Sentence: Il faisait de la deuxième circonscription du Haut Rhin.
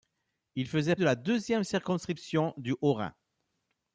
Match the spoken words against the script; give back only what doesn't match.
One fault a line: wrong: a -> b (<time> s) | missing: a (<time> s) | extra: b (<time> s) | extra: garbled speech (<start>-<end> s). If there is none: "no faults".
no faults